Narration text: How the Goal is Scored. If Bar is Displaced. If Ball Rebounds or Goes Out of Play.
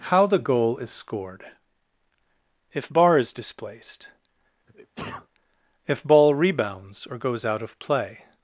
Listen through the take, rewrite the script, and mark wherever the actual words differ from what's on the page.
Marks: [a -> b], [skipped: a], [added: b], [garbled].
How the Goal is Scored. If Bar is Displaced. If Ball Rebounds or Goes Out of Play.